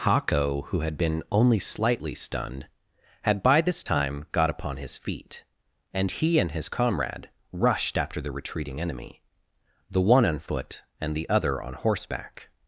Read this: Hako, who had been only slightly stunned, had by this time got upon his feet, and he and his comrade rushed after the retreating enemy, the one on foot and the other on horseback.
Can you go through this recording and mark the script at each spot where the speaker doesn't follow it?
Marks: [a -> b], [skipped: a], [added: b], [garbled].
Hako, who had been only slightly stunned, had by this time got upon his feet, and he and his comrade rushed after the retreating enemy, the one on foot and the other on horseback.